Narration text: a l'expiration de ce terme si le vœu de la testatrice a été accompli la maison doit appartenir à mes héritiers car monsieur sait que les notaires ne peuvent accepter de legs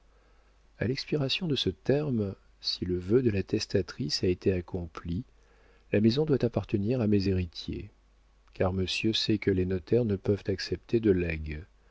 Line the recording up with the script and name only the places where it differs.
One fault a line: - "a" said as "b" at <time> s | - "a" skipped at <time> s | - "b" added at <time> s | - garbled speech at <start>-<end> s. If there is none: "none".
none